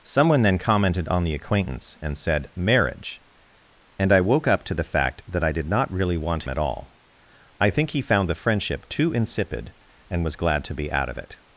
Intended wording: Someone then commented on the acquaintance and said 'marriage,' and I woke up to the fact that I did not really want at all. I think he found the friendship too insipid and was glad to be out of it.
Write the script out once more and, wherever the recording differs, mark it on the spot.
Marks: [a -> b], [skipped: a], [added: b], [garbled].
Someone then commented on the acquaintance and said 'marriage,' and I woke up to the fact that I did not really want at all. I think he found the friendship too insipid and was glad to be out of it.